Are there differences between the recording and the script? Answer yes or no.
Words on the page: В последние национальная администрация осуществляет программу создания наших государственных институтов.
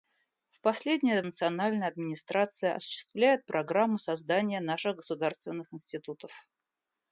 no